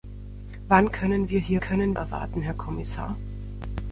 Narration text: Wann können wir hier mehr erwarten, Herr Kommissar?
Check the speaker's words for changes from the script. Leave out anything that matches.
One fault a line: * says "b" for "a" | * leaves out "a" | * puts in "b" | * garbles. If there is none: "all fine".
* says "können" for "mehr"